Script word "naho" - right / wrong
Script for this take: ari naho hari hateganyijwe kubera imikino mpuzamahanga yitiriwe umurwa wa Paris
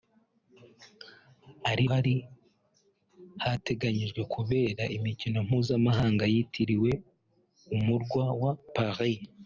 wrong